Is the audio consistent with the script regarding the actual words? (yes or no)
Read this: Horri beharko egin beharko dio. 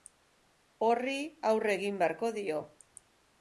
no